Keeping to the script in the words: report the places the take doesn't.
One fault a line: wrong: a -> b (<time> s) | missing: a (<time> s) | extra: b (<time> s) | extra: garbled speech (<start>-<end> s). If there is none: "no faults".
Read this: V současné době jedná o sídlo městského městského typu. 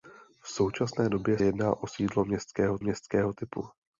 no faults